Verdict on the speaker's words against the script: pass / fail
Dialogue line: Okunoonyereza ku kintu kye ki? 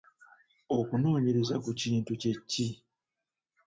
pass